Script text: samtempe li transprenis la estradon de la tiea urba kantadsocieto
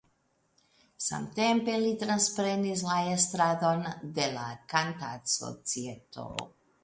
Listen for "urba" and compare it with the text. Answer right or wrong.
wrong